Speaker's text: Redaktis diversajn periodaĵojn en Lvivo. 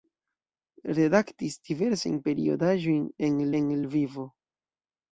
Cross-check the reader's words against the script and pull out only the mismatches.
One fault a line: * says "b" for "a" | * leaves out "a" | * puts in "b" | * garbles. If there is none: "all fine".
* puts in "en"